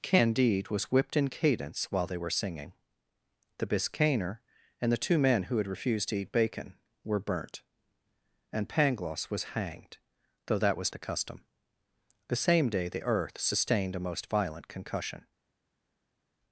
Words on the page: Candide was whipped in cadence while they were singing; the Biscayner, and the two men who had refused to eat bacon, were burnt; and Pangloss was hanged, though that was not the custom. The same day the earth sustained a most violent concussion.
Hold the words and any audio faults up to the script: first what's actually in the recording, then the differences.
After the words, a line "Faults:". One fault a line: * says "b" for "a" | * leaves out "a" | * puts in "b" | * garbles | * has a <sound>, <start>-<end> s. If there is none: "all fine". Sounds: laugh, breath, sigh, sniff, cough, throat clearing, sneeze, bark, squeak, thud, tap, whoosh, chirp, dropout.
Candide was whipped in cadence while they were singing; the Biscayner, and the two men who had refused to eat bacon, were burnt; and Pangloss was hanged, though that was the custom. The same day the earth sustained a most violent concussion.
Faults:
* leaves out "not"